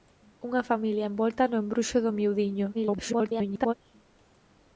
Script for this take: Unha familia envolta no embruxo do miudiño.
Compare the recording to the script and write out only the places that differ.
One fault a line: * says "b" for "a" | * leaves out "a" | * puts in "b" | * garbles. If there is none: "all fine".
* garbles